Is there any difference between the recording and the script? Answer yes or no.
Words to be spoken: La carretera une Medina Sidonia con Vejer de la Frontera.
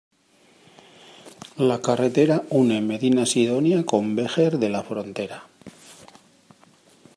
no